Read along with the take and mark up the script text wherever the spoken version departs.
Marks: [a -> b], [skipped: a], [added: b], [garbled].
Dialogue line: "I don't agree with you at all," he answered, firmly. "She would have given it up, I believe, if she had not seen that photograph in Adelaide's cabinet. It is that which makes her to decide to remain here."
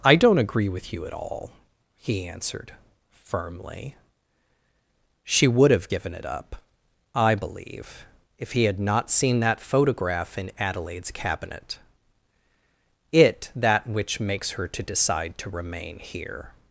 "I don't agree with you at all," he answered, firmly. "She would have given it up, I believe, if [she -> he] had not seen that photograph in Adelaide's cabinet. It [skipped: is] that which makes her to decide to remain here."